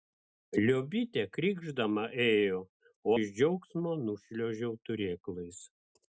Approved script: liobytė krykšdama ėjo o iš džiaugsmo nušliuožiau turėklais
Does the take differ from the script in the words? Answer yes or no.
no